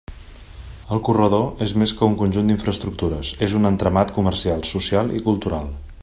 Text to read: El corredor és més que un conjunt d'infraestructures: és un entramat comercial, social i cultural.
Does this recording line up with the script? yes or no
yes